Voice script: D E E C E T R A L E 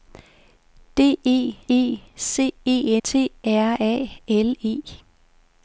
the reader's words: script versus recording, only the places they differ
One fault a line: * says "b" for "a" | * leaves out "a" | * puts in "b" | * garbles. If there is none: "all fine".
all fine